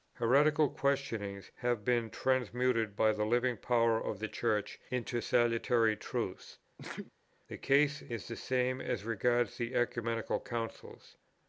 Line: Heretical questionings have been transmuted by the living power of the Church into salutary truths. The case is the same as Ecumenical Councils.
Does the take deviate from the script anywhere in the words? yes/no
yes